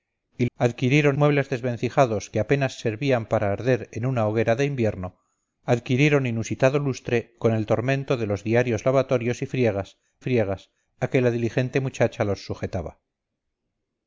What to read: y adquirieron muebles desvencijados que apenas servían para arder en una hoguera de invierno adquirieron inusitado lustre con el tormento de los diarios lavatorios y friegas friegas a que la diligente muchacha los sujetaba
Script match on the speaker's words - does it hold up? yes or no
yes